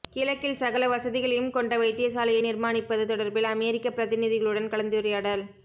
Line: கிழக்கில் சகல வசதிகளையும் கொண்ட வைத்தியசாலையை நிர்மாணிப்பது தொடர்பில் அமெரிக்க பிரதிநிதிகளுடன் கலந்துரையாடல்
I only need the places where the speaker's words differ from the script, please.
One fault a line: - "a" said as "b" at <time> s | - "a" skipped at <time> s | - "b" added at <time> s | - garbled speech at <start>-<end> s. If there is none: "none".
none